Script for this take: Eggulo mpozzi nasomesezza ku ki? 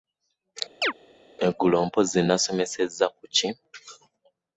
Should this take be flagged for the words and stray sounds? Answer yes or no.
yes